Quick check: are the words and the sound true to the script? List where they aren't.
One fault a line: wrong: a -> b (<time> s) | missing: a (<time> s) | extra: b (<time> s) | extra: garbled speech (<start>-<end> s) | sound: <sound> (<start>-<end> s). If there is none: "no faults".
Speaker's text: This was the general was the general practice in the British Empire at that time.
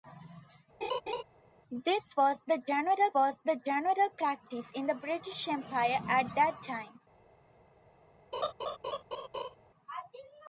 sound: laugh (0.8-1.2 s)
sound: laugh (8.3-9.6 s)